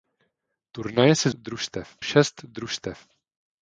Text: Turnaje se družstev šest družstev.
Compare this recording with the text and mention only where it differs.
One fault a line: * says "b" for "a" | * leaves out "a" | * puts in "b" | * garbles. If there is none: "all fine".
all fine